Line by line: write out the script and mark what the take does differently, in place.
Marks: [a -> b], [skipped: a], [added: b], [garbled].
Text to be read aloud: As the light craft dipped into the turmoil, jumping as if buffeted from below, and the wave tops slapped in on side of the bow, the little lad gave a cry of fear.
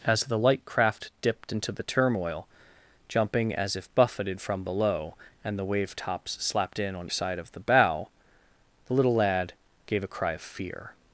As the light craft dipped into the turmoil, jumping as if buffeted from below, and the wave tops slapped in on side of the bow, the little lad gave a cry of fear.